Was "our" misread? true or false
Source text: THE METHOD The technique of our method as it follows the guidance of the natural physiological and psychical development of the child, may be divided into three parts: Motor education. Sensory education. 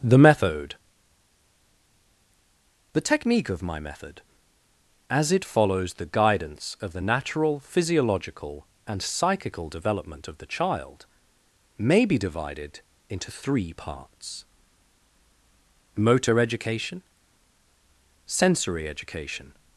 true